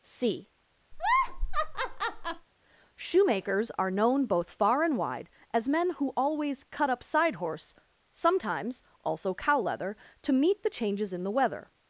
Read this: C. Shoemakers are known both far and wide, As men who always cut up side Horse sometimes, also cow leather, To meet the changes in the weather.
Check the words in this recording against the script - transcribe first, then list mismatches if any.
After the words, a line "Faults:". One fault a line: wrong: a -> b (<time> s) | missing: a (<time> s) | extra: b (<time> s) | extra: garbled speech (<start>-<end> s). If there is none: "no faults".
C. Shoemakers are known both far and wide, As men who always cut up side Horse sometimes, also cow leather, To meet the changes in the weather.
Faults:
no faults